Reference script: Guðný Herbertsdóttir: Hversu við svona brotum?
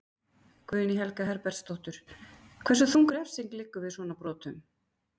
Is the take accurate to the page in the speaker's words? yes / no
no